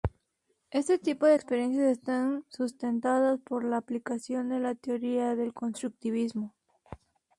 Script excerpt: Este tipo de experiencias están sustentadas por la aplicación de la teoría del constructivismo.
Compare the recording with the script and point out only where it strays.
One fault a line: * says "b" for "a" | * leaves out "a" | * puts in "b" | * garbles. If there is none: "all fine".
all fine